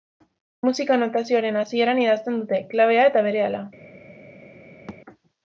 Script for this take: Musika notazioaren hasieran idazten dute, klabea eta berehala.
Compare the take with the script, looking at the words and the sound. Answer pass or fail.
fail